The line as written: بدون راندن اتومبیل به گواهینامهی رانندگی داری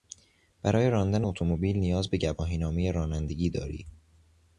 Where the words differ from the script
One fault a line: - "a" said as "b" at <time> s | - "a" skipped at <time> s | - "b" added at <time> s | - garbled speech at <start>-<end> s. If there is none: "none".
- "بدون" said as "برای" at 0.6 s
- "نیاز" added at 1.8 s